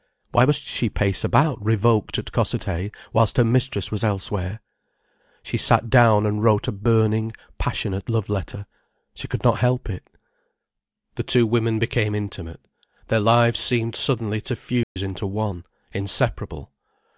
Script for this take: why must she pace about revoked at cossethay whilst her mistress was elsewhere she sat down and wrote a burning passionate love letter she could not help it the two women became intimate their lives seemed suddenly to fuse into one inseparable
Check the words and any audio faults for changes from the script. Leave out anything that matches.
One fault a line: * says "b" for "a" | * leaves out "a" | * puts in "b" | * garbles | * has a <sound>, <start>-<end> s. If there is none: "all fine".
* has a dropout, 14.8-15.0 s